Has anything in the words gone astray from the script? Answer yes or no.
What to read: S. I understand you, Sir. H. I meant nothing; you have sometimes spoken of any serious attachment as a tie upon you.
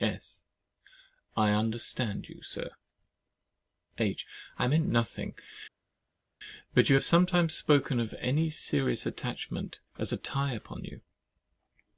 yes